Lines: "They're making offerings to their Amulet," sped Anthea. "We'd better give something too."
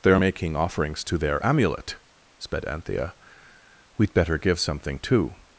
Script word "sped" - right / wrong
right